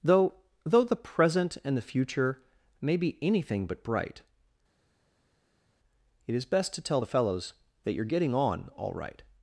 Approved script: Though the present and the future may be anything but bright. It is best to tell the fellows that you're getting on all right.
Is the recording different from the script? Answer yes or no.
yes